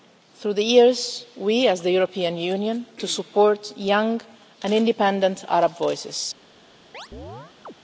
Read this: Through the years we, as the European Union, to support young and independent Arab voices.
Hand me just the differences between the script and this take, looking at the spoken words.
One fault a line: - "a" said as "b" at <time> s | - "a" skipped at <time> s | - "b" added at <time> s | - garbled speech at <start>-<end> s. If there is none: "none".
none